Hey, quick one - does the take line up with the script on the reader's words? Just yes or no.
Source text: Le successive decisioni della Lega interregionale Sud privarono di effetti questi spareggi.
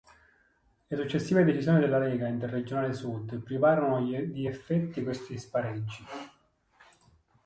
yes